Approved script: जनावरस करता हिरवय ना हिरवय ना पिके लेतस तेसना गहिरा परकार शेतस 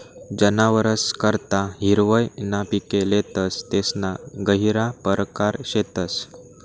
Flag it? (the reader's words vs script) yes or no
yes